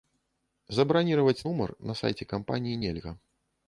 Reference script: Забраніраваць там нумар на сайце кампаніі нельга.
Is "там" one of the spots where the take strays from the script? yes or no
yes